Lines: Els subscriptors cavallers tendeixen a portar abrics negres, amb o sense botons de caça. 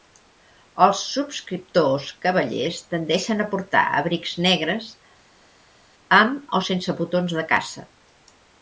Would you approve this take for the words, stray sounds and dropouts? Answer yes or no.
yes